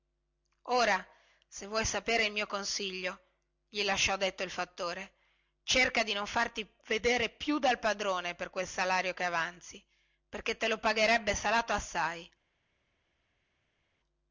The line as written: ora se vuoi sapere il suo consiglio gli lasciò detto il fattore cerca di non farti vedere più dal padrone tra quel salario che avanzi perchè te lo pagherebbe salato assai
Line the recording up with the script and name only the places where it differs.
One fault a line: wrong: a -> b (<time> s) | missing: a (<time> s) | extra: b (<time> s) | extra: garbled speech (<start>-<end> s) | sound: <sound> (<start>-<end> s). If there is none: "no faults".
wrong: suo -> mio (2.3 s)
wrong: tra -> per (8.3 s)